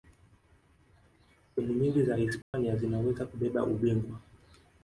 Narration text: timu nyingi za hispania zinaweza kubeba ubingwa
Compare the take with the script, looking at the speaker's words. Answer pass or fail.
pass